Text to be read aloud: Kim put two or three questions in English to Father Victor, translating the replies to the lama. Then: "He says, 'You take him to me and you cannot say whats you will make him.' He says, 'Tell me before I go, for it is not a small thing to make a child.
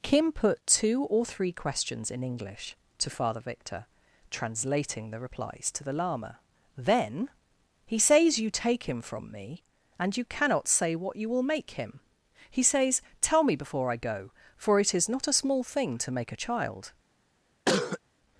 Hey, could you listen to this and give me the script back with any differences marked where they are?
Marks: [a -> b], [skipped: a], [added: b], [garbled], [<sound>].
Kim put two or three questions in English to Father Victor, translating the replies to the lama. Then: "He says, 'You take him [to -> from] me and you cannot say [whats -> what] you will make him.' He says, 'Tell me before I go, for it is not a small thing to make a child. [cough]